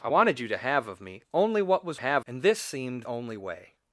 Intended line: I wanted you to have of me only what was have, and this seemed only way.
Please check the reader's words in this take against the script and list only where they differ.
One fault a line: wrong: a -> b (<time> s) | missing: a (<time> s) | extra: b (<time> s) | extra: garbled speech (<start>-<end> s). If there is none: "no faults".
no faults